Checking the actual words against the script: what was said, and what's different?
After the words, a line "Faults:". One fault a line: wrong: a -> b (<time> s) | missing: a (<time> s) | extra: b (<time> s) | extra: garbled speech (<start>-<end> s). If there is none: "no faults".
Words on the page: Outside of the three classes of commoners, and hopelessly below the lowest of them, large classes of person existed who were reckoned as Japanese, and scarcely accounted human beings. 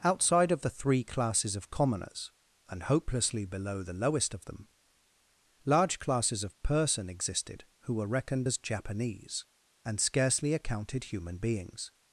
Outside of the three classes of commoners, and hopelessly below the lowest of them, large classes of person existed who were reckoned as Japanese, and scarcely accounted human beings.
Faults:
no faults